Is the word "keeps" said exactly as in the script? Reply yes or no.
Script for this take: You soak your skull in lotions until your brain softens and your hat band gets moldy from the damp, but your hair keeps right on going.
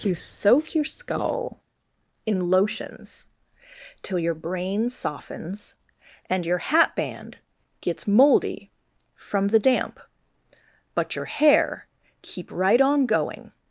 no